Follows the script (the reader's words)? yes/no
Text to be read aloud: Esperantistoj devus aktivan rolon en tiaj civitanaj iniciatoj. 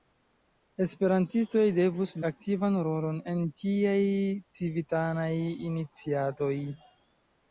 yes